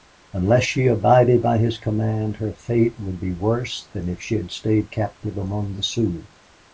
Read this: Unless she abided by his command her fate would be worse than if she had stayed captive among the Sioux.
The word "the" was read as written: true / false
true